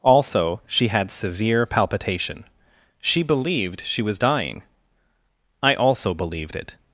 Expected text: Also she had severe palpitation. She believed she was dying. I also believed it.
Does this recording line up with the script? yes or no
yes